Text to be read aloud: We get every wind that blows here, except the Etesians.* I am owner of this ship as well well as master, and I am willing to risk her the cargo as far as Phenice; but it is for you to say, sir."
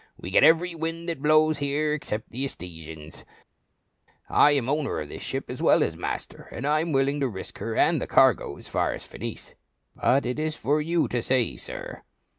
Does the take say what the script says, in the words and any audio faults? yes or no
no